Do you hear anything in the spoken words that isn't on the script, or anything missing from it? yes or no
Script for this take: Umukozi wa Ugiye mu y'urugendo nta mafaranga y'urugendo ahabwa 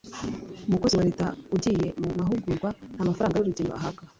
yes